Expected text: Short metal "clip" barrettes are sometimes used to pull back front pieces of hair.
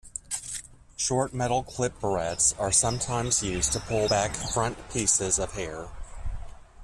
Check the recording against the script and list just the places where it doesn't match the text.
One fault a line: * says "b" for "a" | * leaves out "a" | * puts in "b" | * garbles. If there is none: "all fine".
all fine